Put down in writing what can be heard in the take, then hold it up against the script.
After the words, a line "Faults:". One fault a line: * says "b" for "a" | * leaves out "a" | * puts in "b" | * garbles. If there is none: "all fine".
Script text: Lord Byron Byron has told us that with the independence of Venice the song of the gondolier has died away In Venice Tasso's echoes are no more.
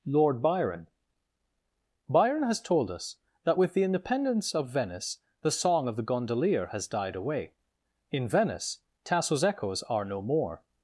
Lord Byron Byron has told us that with the independence of Venice the song of the gondolier has died away In Venice Tasso's echoes are no more.
Faults:
all fine